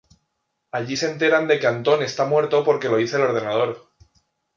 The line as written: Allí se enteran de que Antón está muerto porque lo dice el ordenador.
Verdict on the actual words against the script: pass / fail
pass